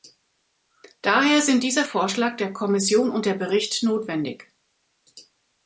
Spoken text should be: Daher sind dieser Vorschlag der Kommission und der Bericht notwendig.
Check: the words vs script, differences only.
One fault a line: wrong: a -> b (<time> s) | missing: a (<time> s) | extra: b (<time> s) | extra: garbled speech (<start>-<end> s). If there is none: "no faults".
no faults